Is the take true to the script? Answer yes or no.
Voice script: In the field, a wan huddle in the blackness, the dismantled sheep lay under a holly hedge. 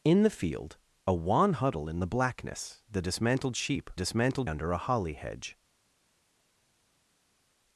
no